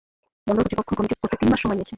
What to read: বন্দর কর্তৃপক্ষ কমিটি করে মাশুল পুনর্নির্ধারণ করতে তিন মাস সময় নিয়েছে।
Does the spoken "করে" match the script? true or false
false